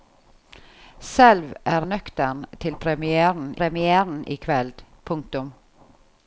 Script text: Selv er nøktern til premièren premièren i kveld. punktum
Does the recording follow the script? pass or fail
pass